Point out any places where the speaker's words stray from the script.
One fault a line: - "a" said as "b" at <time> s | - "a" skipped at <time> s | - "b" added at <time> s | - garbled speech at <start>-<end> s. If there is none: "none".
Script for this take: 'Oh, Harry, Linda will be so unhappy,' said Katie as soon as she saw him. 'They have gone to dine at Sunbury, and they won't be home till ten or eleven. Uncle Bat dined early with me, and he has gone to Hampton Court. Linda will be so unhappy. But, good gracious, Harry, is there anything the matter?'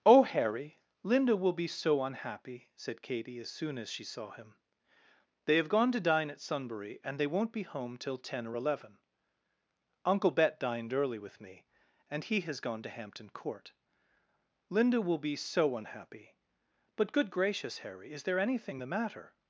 - "Bat" said as "Bet" at 10.3 s